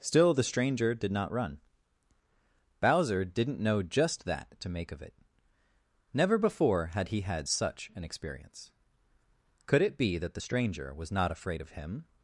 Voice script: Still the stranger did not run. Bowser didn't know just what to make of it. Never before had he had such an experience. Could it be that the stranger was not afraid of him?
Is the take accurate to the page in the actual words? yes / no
no